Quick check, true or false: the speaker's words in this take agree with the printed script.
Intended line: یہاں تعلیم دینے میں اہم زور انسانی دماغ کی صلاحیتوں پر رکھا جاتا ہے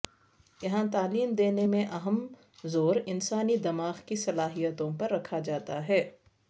true